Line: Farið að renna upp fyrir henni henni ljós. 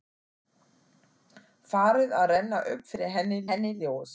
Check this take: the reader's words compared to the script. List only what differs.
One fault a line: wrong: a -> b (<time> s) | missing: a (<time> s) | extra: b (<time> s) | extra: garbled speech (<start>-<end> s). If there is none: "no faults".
no faults